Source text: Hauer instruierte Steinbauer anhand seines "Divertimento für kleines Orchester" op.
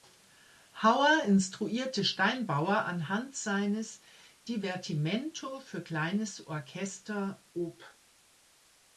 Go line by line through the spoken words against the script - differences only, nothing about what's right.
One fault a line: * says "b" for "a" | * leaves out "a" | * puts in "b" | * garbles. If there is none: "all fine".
all fine